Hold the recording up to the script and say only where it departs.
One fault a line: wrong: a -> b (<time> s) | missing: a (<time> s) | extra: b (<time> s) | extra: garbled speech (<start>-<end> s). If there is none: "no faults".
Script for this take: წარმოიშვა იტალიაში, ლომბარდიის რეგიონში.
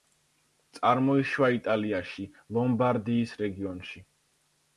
no faults